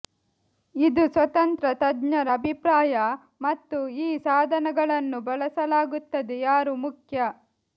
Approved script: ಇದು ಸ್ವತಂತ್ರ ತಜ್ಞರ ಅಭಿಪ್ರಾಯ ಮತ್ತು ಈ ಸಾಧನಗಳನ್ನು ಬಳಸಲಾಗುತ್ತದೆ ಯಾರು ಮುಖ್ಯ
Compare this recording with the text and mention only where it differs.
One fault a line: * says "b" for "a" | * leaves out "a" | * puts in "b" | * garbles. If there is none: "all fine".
all fine